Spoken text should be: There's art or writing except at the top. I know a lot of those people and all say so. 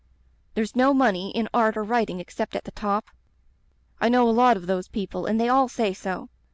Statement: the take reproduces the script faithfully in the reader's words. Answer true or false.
false